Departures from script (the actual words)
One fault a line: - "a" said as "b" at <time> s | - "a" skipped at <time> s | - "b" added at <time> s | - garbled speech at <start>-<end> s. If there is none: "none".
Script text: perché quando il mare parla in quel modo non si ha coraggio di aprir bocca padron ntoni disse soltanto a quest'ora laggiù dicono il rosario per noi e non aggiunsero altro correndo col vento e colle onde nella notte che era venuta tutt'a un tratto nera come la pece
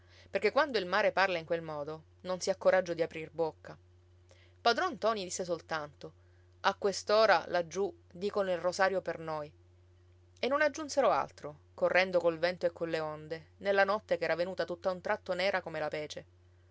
none